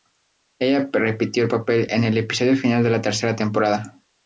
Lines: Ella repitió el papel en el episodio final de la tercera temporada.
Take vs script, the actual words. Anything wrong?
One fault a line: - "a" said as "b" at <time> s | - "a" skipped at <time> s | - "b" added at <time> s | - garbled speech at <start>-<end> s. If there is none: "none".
none